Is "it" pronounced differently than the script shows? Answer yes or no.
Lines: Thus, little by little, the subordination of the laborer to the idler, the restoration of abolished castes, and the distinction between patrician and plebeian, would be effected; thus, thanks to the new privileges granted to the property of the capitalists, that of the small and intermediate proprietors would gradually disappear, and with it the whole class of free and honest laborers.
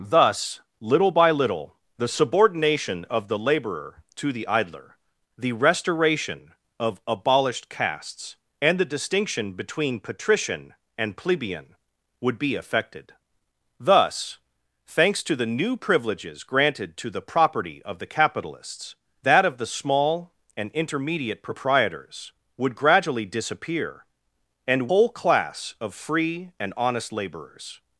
yes